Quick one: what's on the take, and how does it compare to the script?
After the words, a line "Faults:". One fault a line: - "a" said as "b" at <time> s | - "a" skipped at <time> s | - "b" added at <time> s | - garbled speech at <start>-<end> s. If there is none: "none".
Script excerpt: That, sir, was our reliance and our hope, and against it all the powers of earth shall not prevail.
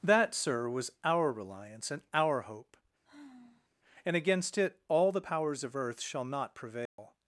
That, sir, was our reliance and our hope, and against it all the powers of earth shall not prevail.
Faults:
none